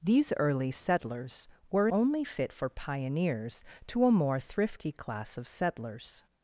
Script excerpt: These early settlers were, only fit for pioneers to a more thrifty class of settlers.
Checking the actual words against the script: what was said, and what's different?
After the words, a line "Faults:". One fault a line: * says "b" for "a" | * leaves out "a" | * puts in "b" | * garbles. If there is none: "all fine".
These early settlers were, only fit for pioneers to a more thrifty class of settlers.
Faults:
all fine